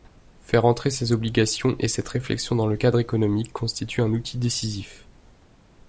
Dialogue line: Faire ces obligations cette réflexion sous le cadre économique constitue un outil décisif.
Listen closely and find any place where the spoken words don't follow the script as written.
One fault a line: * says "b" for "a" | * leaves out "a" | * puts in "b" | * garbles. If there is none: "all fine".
* puts in "entrer"
* puts in "et"
* says "dans" for "sous"